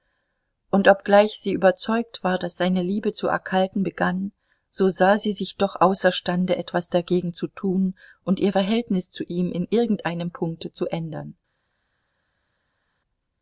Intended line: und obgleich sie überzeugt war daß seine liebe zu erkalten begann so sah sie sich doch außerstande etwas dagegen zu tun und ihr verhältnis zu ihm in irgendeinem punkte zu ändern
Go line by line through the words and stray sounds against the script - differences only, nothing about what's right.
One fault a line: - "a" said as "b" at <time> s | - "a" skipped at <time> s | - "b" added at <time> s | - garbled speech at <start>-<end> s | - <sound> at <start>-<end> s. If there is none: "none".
none